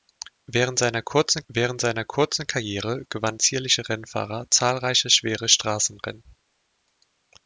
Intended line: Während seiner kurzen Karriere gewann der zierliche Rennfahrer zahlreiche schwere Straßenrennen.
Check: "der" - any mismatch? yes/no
yes